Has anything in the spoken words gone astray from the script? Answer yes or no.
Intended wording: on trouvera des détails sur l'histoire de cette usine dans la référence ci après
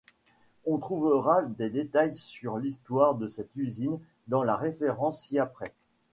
no